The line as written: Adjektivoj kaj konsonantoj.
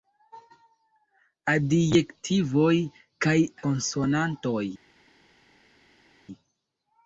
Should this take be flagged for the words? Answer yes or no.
no